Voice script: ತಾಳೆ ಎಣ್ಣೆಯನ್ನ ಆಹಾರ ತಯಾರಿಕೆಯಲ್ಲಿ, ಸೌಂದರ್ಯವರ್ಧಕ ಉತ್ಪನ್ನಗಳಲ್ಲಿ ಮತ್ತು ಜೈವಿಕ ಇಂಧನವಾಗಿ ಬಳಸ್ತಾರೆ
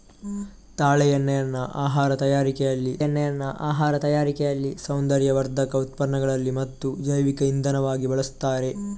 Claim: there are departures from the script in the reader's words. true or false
true